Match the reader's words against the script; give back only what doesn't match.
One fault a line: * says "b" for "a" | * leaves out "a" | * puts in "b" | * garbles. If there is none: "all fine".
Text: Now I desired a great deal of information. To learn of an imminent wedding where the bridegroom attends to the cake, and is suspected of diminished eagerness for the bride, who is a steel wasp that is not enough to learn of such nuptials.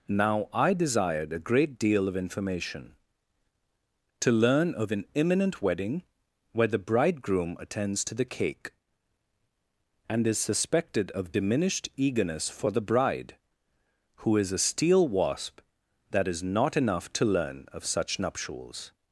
all fine